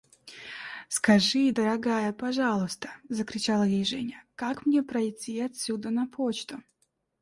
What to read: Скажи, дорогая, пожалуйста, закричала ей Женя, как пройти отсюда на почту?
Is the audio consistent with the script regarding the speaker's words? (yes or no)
no